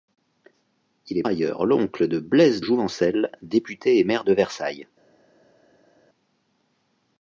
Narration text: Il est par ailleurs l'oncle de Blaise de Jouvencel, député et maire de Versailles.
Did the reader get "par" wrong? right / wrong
wrong